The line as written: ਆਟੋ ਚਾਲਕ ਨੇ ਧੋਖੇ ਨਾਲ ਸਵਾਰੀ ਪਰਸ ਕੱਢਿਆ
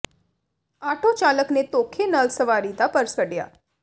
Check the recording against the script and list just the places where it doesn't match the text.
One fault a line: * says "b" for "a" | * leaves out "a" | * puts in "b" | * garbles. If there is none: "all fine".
* puts in "ਦਾ"